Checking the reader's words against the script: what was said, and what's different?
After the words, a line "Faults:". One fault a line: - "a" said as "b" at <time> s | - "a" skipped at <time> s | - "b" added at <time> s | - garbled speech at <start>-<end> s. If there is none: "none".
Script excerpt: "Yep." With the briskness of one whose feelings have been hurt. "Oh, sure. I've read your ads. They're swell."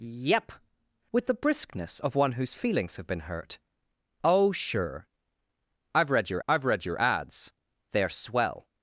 "Yep." With the briskness of one whose feelings have been hurt. "Oh, sure. I've read your I've read your ads. They're swell."
Faults:
- "I've read your" added at 6.5 s